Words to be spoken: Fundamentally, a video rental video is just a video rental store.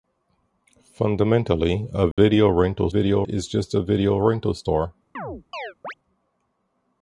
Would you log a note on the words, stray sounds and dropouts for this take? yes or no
yes